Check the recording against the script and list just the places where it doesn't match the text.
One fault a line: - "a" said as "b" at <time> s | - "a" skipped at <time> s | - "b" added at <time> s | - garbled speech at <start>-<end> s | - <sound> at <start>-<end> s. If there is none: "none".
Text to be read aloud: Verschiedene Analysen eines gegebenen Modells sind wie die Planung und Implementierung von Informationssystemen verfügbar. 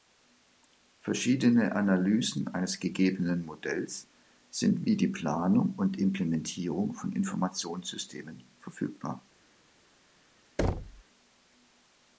- thud at 10.6-11.0 s